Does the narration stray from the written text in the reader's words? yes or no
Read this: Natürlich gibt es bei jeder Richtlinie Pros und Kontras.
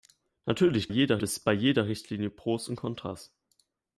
yes